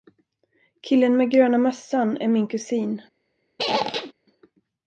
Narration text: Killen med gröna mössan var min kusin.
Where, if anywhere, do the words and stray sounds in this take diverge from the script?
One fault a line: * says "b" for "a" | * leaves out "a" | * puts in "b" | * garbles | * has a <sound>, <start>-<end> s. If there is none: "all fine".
* says "är" for "var"
* has a squeak, 3.6-4.1 s